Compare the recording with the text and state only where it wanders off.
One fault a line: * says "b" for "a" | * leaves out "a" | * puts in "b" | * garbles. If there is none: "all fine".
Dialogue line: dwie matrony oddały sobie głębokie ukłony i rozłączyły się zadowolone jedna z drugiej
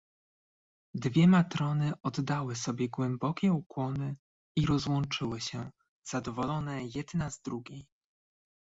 all fine